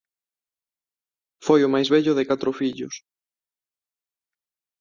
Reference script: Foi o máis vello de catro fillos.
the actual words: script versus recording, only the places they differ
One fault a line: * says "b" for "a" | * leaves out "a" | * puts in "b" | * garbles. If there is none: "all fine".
all fine